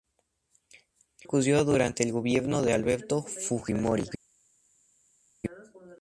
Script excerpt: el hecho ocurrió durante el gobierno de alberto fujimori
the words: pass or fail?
fail